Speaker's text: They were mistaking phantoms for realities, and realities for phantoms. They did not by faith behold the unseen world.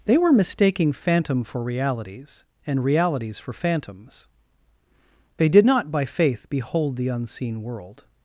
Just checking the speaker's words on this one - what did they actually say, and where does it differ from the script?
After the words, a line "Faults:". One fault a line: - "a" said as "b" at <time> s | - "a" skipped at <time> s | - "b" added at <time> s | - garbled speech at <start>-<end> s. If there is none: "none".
They were mistaking phantom for realities, and realities for phantoms. They did not by faith behold the unseen world.
Faults:
- "phantoms" said as "phantom" at 0.9 s